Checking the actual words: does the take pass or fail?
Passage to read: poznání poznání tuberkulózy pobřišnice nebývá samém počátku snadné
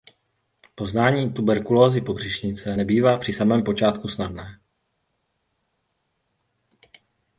fail